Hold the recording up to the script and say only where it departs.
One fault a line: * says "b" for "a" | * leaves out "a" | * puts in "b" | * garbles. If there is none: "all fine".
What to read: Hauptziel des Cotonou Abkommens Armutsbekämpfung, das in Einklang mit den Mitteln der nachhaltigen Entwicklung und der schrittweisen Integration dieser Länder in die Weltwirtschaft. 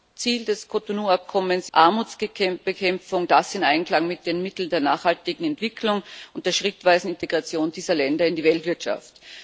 all fine